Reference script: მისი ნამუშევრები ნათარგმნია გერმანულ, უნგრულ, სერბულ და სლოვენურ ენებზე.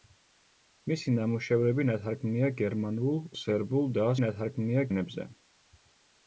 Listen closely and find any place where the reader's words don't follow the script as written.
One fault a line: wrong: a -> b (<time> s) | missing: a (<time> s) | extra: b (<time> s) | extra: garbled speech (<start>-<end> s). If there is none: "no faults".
missing: უნგრულ (3.2 s)
wrong: სლოვენურ -> ნათარგმნია (4.2 s)